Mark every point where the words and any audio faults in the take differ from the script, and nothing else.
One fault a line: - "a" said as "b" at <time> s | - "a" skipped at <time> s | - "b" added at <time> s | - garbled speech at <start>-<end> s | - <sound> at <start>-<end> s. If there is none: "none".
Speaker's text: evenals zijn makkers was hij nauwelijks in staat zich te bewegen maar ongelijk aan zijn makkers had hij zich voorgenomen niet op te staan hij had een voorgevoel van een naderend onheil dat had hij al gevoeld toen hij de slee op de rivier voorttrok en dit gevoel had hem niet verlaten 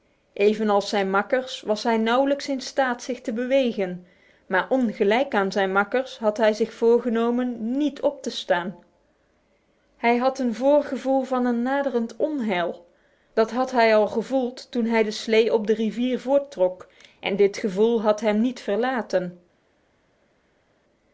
none